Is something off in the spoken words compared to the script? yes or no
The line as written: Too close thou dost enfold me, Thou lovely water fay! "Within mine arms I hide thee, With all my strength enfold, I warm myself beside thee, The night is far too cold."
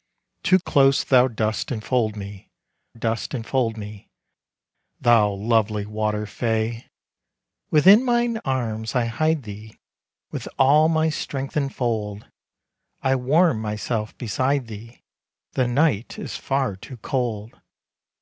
yes